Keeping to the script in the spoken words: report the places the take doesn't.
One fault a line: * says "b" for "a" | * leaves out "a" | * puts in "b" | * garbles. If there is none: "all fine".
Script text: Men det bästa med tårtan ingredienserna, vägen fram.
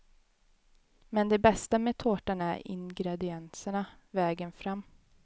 * puts in "är"